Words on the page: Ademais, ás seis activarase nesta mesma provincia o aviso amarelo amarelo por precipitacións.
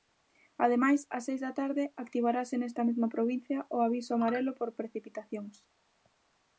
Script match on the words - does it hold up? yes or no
no